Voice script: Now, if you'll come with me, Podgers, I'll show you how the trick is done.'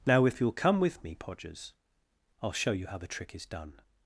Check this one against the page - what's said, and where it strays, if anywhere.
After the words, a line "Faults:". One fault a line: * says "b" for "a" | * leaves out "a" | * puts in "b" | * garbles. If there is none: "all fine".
Now, if you'll come with me, Podgers, I'll show you how the trick is done.'
Faults:
all fine